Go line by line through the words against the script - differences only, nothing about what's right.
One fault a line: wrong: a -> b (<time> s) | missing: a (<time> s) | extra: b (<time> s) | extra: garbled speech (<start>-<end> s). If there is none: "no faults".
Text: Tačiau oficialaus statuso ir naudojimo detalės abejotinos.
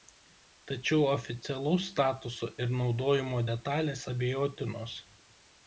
no faults